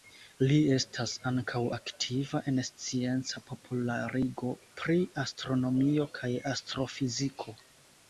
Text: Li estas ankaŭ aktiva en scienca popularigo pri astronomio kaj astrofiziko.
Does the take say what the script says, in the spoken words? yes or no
yes